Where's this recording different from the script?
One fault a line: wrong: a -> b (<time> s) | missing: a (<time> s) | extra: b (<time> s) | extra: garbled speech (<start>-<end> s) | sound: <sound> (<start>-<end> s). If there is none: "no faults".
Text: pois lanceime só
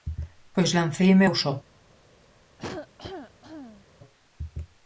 extra: eu (1.2 s)
sound: cough (2.6-3.9 s)